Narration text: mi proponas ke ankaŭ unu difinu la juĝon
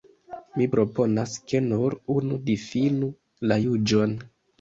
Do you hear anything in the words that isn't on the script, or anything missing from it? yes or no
yes